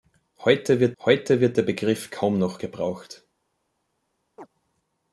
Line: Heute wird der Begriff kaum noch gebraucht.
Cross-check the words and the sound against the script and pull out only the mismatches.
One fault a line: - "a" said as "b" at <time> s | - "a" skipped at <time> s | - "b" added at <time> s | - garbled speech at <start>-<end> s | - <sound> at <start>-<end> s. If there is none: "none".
- "heute wird" added at 1.0 s
- chirp at 4.4-4.5 s